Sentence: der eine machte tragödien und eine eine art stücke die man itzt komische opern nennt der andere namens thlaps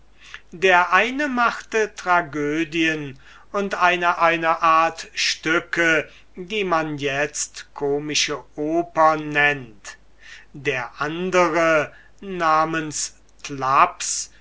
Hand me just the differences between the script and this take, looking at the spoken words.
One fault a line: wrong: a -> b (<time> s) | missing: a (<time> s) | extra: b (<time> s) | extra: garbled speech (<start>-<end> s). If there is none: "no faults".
no faults